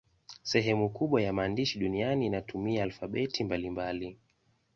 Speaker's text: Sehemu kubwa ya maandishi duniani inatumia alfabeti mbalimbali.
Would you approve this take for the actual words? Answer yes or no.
yes